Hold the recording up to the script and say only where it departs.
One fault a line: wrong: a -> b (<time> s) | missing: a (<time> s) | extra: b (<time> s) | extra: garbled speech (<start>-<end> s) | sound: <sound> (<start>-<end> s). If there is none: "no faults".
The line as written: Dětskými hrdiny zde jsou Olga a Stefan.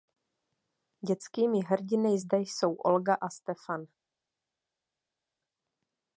no faults